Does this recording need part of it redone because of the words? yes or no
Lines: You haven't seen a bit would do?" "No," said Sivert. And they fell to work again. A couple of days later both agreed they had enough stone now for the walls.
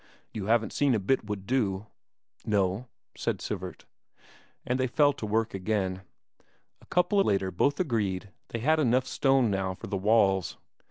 yes